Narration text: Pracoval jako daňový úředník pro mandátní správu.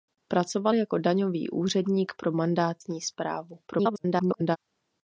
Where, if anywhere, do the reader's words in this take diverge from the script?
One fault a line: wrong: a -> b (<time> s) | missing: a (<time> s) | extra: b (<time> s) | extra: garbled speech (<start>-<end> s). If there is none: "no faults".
extra: garbled speech (3.7-4.6 s)